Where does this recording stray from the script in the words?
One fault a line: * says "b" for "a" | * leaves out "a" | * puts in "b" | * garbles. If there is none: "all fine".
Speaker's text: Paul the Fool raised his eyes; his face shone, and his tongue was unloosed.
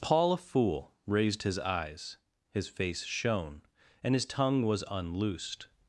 * says "a" for "the"